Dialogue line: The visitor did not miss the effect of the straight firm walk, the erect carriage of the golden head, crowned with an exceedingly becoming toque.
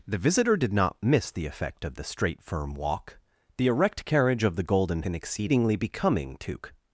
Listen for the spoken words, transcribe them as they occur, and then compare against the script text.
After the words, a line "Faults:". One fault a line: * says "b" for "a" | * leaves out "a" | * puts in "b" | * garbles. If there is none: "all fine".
The visitor did not miss the effect of the straight firm walk, the erect carriage of the golden an exceedingly becoming toque.
Faults:
* leaves out "head crowned with"